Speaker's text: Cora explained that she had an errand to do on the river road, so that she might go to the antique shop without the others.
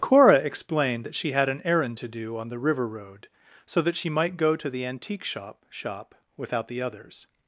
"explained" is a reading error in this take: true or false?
false